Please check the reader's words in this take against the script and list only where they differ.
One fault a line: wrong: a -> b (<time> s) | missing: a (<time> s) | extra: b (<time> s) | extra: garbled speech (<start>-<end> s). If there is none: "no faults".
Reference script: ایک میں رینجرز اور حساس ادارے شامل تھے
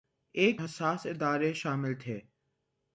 missing: میں رینجرز اور (0.6 s)